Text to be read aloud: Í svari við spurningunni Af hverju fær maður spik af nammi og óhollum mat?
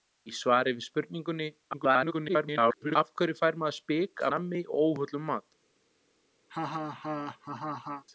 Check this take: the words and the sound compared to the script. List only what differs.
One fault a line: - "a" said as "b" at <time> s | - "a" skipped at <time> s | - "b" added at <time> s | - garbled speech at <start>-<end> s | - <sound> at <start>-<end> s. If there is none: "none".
- garbled speech at 1.7-3.0 s
- "af" skipped at 4.2 s
- laugh at 6.5-8.0 s